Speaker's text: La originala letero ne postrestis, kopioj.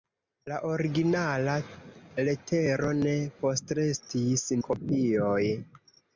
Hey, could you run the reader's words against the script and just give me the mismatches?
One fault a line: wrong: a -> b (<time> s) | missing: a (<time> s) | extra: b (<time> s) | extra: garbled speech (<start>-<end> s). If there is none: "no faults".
no faults